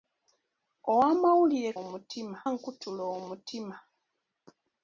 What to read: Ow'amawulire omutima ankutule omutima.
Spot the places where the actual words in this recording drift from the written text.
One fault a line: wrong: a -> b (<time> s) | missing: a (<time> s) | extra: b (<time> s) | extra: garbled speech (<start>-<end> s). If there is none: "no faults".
no faults